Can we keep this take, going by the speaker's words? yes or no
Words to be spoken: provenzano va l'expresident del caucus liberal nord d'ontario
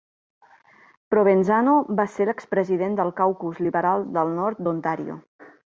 no